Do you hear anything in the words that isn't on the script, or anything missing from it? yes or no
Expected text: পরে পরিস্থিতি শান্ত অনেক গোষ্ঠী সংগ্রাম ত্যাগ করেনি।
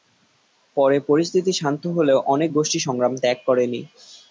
yes